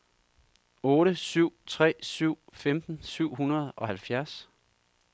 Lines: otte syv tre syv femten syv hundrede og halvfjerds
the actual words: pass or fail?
pass